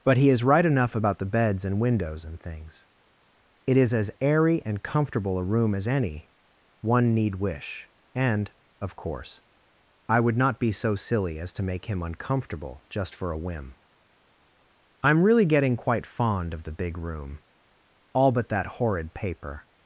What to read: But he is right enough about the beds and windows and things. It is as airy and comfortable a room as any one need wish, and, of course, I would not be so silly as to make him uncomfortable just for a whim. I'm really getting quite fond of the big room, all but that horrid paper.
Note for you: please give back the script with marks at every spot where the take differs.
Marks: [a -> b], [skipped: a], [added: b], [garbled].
But he is right enough about the beds and windows and things. It is as airy and comfortable a room as any one need wish, and, of course, I would not be so silly as to make him uncomfortable just for a whim. I'm really getting quite fond of the big room, all but that horrid paper.